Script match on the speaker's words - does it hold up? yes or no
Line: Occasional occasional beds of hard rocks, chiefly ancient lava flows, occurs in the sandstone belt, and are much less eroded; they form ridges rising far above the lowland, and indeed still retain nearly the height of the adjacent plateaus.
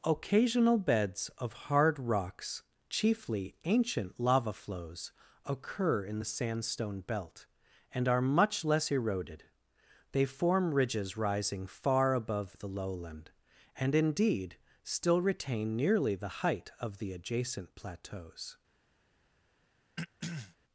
no